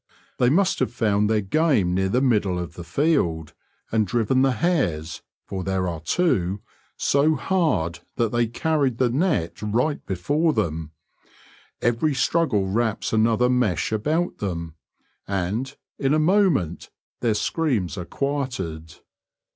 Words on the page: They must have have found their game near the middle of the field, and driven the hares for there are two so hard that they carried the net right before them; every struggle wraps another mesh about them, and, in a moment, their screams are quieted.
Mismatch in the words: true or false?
true